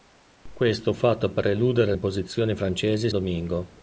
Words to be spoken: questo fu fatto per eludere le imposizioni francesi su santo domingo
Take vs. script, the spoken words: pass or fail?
fail